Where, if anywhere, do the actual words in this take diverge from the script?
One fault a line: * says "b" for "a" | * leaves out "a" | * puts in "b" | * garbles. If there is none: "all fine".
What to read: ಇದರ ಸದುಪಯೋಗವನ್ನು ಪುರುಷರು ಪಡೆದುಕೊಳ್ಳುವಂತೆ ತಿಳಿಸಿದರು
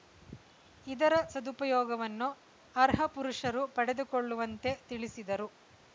* puts in "ಅರ್ಹ"